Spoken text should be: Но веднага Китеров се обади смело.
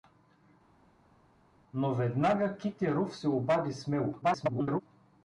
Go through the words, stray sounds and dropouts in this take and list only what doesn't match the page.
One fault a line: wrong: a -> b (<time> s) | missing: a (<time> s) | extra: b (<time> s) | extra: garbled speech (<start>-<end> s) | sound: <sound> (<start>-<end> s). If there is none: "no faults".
extra: garbled speech (4.2-4.8 s)